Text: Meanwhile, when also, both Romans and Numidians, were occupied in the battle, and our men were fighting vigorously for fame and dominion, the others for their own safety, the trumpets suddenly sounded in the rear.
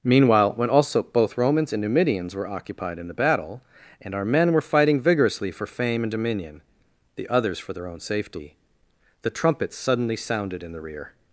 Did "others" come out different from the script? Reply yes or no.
no